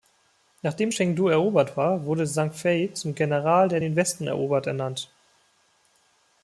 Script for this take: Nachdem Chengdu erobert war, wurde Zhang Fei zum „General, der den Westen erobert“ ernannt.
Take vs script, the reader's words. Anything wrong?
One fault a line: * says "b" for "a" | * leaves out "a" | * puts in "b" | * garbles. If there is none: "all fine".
all fine